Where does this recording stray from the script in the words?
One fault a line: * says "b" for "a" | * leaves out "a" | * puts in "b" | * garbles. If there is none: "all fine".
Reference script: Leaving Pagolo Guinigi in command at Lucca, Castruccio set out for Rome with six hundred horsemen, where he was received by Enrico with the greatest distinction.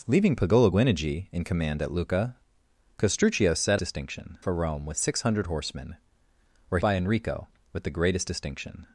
* says "distinction" for "out"
* leaves out "he was received"